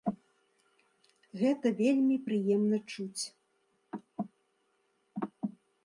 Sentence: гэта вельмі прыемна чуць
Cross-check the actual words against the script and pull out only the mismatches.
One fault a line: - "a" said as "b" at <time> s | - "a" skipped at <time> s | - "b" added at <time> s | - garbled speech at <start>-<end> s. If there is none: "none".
none